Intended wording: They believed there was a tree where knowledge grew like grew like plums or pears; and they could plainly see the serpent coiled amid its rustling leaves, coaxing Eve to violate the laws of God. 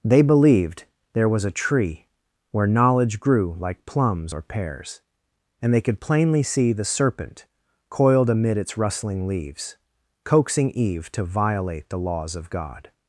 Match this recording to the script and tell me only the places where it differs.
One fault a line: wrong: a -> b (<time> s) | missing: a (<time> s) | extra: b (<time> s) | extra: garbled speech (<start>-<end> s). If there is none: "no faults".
missing: grew like (3.9 s)